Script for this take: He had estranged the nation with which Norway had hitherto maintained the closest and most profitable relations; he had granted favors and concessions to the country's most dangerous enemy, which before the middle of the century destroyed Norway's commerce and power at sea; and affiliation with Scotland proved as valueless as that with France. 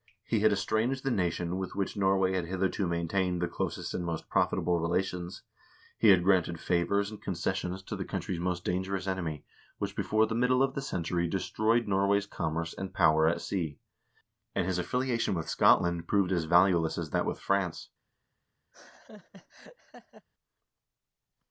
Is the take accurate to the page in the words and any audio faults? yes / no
no